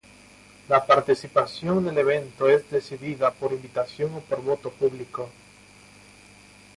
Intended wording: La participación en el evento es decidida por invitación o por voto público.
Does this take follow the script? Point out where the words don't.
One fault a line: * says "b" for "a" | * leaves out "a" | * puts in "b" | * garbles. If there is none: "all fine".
all fine